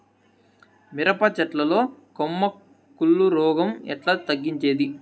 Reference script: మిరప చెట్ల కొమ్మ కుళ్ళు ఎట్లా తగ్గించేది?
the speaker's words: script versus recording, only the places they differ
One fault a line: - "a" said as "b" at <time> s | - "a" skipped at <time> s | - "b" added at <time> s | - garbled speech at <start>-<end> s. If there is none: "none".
- "లో" added at 1.6 s
- "రోగం" added at 3.3 s